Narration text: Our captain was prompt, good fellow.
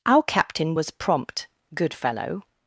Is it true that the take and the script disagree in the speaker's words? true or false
false